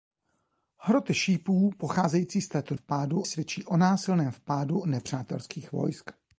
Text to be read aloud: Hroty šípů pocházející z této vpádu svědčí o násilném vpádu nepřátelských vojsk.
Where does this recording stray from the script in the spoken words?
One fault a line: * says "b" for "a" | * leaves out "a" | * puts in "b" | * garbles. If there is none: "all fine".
all fine